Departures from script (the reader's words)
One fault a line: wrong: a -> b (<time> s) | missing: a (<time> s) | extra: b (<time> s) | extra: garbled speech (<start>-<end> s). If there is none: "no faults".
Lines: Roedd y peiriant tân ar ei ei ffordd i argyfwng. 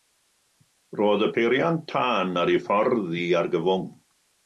missing: ei (2.6 s)